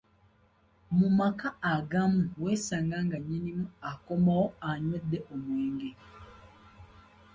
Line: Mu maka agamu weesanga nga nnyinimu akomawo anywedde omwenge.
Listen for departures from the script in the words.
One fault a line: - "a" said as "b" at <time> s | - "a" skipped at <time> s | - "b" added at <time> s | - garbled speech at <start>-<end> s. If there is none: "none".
none